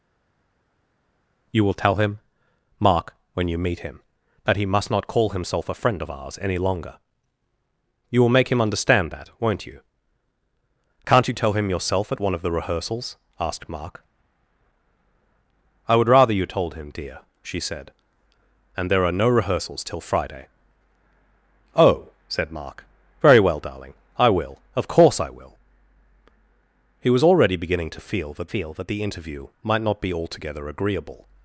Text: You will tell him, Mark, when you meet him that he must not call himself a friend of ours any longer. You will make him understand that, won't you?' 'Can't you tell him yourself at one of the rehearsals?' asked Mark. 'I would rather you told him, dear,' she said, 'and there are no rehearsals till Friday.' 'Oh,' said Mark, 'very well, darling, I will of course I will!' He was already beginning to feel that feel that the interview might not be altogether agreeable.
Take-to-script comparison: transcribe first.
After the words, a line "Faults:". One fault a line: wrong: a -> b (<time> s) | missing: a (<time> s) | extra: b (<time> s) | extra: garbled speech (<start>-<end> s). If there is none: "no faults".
You will tell him, Mark, when you meet him that he must not call himself a friend of ours any longer. You will make him understand that, won't you?' 'Can't you tell him yourself at one of the rehearsals?' asked Mark. 'I would rather you told him, dear,' she said, 'and there are no rehearsals till Friday.' 'Oh,' said Mark, 'very well, darling, I will of course I will!' He was already beginning to feel that feel that the interview might not be altogether agreeable.
Faults:
no faults